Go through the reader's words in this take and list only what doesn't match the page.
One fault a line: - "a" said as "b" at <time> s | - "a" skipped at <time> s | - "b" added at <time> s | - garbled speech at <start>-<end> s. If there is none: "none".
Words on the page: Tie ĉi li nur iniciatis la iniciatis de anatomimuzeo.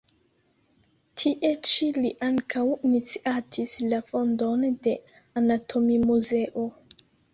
- "nur" said as "ankaŭ" at 2.3 s
- "iniciatis" said as "fondon" at 4.1 s